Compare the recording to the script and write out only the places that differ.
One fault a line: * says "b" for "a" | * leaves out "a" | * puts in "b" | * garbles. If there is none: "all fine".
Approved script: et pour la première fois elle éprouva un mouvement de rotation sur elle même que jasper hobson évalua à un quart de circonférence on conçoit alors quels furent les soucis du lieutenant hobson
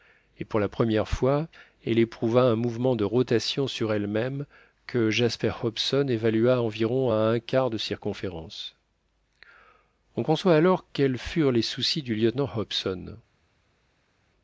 * puts in "environ"